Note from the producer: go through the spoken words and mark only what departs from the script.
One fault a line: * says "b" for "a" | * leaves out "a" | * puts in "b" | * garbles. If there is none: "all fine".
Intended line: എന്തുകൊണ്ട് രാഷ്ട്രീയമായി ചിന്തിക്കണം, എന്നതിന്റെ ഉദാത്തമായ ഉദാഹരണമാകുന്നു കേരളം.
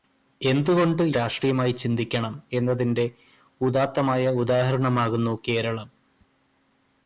all fine